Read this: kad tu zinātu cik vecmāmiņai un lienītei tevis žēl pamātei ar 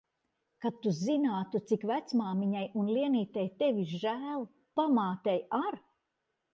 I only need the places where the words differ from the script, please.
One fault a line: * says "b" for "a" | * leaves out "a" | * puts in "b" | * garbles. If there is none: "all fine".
all fine